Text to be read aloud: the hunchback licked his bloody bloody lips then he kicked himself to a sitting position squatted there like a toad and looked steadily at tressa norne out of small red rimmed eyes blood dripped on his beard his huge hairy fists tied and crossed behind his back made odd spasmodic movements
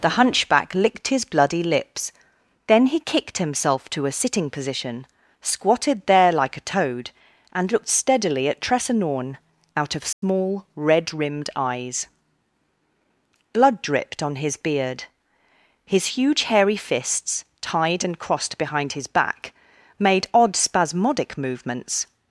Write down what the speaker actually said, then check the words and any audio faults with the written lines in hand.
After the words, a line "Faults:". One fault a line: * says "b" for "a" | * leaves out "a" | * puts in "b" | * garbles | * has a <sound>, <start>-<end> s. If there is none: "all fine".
the hunchback licked his bloody lips then he kicked himself to a sitting position squatted there like a toad and looked steadily at tressa norne out of small red rimmed eyes blood dripped on his beard his huge hairy fists tied and crossed behind his back made odd spasmodic movements
Faults:
* leaves out "bloody"
* has a dropout, 10.1-10.2 s